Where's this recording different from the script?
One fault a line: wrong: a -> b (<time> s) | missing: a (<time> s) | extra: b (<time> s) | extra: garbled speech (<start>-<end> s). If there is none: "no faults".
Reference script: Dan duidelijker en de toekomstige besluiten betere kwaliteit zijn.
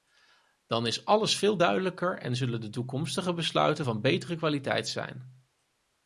extra: is alles veel (0.9 s)
extra: zullen (2.3 s)
extra: van (3.8 s)